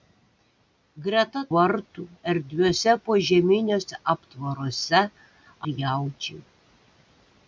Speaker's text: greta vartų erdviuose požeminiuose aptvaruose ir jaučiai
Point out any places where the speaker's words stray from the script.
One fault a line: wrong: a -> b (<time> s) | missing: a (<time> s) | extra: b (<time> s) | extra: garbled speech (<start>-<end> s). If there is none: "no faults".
no faults